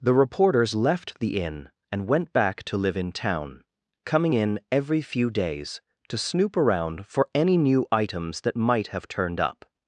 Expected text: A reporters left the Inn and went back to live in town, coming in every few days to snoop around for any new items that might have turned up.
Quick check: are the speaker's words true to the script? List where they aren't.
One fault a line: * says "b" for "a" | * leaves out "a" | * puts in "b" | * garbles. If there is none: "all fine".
* says "The" for "A"